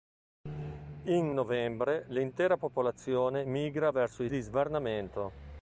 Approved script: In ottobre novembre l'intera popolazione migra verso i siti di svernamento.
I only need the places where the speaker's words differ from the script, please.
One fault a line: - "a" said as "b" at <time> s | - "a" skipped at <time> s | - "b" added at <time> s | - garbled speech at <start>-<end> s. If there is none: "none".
- "ottobre" skipped at 1.4 s
- "siti" skipped at 4.3 s